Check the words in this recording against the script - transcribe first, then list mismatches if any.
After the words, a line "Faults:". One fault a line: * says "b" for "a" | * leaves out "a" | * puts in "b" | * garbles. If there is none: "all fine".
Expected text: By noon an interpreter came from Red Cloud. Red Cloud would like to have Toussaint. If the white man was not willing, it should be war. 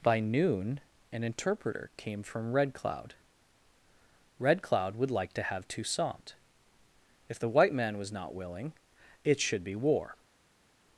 By noon an interpreter came from Red Cloud. Red Cloud would like to have Toussaint. If the white man was not willing, it should be war.
Faults:
all fine